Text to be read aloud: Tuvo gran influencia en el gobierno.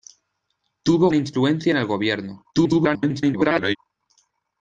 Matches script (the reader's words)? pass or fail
fail